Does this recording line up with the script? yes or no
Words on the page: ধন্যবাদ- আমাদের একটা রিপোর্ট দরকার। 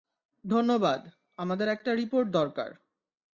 yes